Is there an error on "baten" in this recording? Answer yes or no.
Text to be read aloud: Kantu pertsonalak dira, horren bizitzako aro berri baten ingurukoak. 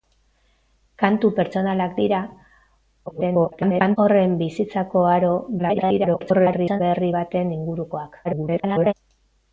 no